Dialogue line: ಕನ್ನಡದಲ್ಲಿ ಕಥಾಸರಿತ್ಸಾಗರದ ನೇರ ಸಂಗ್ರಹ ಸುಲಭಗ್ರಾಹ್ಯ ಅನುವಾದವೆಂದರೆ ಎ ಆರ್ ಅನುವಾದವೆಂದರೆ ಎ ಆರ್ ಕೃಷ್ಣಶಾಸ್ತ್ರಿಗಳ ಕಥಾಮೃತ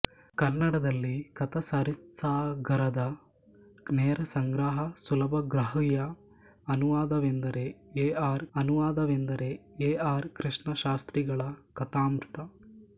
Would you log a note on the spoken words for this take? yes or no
no